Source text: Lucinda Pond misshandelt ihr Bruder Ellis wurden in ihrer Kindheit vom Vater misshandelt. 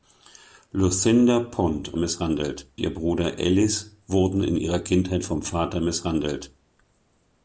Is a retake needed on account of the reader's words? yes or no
no